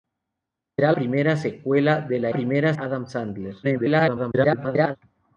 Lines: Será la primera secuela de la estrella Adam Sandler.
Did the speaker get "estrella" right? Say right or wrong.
wrong